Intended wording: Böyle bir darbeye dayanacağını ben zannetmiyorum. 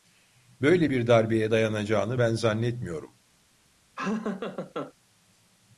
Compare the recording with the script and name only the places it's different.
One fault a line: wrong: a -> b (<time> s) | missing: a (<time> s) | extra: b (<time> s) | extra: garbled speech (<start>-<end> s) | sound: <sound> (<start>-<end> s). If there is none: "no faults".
sound: laugh (4.0-4.9 s)